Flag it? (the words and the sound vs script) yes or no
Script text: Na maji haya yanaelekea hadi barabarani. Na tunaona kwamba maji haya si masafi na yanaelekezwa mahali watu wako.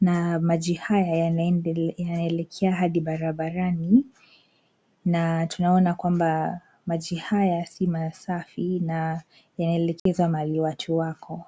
yes